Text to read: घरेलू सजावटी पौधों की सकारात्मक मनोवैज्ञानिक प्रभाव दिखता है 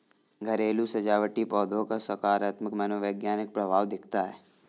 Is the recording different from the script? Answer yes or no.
yes